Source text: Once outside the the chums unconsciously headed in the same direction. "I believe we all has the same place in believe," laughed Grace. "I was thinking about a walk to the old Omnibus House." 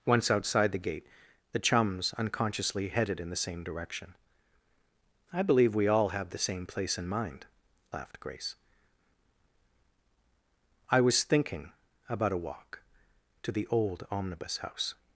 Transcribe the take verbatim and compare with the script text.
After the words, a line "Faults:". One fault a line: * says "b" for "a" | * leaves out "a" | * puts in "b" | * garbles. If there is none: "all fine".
Once outside the gate, the chums unconsciously headed in the same direction. "I believe we all have the same place in mind," laughed Grace. "I was thinking about a walk to the old Omnibus House."
Faults:
* puts in "gate"
* says "have" for "has"
* says "mind" for "believe"